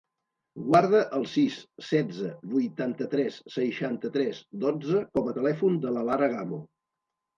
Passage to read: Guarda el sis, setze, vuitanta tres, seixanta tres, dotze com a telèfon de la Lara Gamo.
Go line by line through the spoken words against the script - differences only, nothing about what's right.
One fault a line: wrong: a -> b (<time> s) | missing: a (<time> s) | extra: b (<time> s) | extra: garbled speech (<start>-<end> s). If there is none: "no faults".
no faults